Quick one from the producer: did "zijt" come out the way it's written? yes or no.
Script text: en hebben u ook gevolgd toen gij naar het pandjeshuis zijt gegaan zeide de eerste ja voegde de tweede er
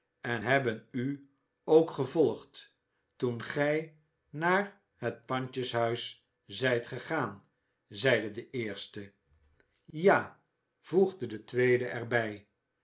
yes